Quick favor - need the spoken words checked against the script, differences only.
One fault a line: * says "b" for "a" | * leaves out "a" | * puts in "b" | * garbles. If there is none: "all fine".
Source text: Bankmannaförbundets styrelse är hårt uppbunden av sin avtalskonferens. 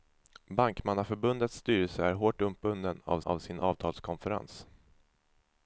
* puts in "av"